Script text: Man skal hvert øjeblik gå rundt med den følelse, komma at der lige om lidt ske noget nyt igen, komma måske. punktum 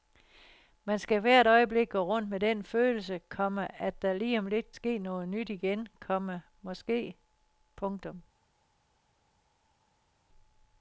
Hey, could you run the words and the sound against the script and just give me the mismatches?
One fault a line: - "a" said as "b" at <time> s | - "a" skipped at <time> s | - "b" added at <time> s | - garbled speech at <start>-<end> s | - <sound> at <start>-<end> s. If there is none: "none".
none